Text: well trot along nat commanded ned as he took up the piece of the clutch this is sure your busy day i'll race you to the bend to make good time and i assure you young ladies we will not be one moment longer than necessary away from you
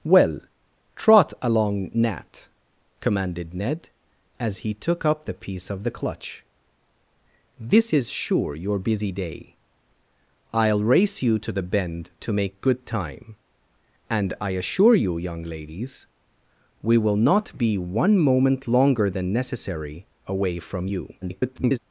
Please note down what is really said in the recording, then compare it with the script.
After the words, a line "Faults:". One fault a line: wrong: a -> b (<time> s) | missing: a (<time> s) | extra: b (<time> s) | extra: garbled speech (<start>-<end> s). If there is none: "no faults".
well trot along nat commanded ned as he took up the piece of the clutch this is sure your busy day i'll race you to the bend to make good time and i assure you young ladies we will not be one moment longer than necessary away from you [garbled]
Faults:
extra: garbled speech (21.2-21.8 s)